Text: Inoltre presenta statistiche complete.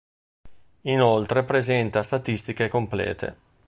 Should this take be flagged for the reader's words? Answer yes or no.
no